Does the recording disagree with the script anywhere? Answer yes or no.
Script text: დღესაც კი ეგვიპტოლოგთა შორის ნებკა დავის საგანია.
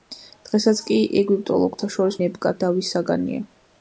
no